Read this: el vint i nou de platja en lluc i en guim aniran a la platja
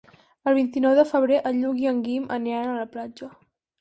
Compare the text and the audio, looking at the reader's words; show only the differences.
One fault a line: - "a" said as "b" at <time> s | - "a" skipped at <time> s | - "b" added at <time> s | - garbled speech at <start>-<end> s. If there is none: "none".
- "platja" said as "febrer" at 1.1 s